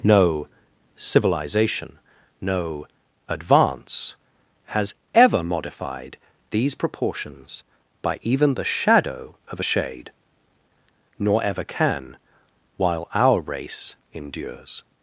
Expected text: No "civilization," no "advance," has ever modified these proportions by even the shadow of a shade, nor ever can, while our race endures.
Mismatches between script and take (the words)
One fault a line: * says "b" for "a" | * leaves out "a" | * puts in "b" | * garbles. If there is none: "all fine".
all fine